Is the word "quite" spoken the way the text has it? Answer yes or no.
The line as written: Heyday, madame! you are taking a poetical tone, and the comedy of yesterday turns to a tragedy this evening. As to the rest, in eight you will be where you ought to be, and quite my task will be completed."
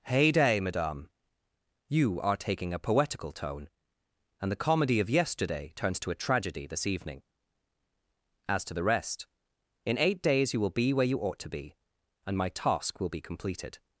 no